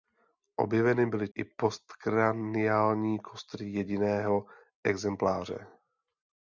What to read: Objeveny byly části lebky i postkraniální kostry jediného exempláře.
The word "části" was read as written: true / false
false